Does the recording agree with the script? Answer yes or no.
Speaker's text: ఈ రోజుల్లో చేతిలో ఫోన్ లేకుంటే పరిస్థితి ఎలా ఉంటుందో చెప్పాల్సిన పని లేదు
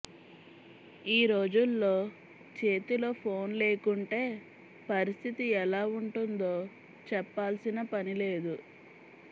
yes